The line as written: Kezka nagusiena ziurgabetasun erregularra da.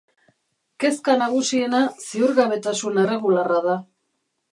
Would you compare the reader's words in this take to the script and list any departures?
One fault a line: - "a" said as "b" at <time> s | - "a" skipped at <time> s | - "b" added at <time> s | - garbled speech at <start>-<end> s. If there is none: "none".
none